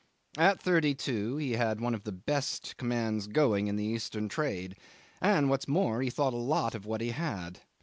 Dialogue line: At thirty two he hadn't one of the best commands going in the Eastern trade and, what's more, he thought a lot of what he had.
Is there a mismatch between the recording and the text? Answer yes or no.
yes